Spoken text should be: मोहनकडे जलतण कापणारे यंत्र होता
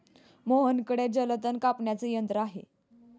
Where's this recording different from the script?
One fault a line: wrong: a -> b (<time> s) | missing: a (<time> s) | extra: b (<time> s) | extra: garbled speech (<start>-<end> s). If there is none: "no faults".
wrong: होता -> आहे (2.4 s)